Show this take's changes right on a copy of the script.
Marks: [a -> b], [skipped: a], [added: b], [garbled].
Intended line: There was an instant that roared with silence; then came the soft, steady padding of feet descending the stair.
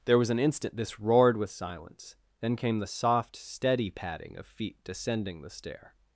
There was an instant [that -> this] roared with silence; then came the soft, steady padding of feet descending the stair.